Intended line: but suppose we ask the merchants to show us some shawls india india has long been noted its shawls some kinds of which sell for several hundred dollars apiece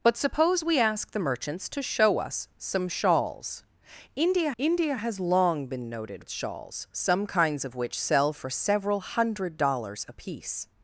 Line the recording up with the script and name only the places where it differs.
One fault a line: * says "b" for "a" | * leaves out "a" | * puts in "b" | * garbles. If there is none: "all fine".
all fine